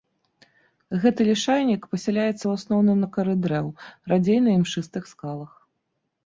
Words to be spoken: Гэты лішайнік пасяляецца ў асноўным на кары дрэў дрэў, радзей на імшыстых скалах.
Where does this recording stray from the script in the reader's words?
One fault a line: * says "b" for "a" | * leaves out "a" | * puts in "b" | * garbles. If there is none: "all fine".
* leaves out "дрэў"